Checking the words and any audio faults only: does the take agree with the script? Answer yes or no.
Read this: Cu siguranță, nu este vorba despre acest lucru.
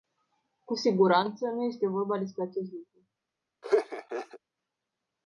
no